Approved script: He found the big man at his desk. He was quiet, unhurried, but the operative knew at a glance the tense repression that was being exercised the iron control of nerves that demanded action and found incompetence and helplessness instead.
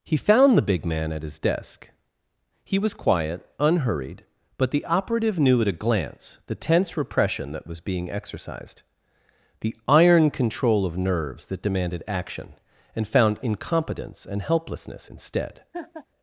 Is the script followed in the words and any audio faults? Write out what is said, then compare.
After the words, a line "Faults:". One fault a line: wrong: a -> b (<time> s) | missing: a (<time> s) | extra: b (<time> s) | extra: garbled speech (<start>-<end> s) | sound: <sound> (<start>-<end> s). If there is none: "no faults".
He found the big man at his desk. He was quiet, unhurried, but the operative knew at a glance the tense repression that was being exercised the iron control of nerves that demanded action and found incompetence and helplessness instead.
Faults:
sound: laugh (15.7-16.1 s)